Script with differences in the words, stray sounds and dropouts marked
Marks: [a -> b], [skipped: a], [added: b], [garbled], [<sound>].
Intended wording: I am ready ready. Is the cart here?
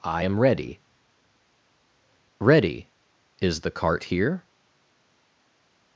I am ready ready. Is the cart here?